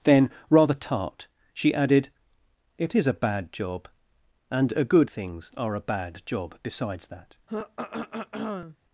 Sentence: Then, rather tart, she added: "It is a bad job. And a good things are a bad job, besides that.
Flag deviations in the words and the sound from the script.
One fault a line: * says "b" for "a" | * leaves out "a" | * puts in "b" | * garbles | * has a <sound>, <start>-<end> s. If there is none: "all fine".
* has a throat clearing, 7.5-8.8 s